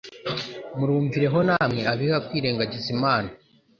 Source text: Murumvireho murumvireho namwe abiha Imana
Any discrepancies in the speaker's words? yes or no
yes